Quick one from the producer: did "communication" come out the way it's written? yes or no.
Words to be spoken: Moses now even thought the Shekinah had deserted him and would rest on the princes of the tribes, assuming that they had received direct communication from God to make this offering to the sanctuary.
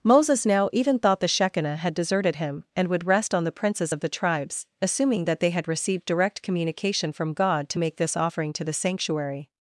yes